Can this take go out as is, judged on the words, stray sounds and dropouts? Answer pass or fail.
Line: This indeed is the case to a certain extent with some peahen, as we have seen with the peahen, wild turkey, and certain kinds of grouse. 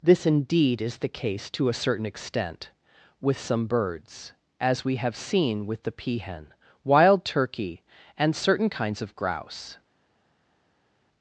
fail